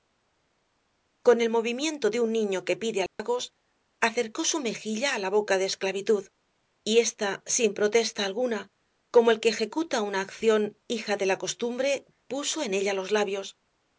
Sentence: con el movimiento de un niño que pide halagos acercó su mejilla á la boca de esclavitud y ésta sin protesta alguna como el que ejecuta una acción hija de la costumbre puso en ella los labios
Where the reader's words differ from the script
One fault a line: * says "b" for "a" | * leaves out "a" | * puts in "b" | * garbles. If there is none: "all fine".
all fine